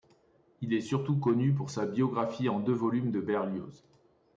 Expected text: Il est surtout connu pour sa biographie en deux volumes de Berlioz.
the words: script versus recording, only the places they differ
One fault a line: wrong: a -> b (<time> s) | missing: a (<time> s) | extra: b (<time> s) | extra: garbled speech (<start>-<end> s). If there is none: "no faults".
no faults